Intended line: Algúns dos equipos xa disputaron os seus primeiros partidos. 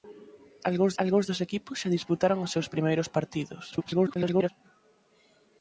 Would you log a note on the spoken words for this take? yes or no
yes